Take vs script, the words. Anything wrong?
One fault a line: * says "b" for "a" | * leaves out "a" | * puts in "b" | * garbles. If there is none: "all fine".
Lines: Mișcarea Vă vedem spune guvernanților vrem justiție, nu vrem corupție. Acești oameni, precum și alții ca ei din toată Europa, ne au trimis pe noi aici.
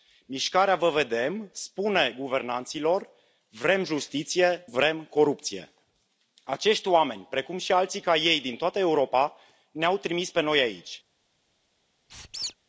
* leaves out "nu"